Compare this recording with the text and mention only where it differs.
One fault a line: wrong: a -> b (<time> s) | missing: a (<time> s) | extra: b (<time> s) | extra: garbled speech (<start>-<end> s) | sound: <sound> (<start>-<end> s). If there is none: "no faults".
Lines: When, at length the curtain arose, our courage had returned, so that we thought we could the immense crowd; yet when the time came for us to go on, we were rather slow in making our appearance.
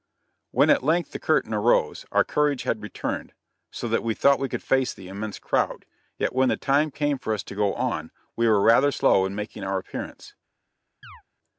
extra: face (4.6 s)
sound: chirp (11.0-11.2 s)